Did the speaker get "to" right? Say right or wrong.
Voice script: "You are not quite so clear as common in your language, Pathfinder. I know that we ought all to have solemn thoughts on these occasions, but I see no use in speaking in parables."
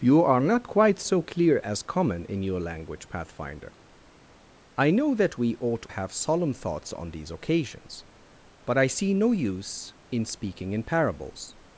wrong